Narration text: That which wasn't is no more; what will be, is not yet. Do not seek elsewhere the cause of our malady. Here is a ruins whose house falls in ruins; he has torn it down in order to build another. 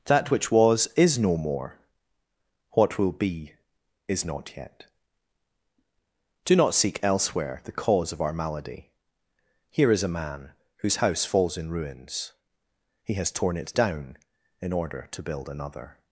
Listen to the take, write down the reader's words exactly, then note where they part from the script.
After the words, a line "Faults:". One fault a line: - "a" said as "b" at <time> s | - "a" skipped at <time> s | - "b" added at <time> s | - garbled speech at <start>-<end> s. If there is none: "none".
That which was is no more; what will be, is not yet. Do not seek elsewhere the cause of our malady. Here is a man whose house falls in ruins; he has torn it down in order to build another.
Faults:
- "wasn't" said as "was" at 0.5 s
- "ruins" said as "man" at 10.1 s